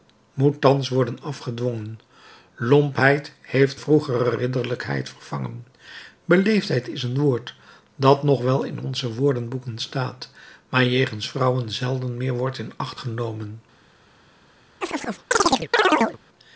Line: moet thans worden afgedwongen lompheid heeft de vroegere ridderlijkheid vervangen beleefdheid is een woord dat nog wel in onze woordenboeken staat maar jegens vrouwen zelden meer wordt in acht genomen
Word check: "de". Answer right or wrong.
wrong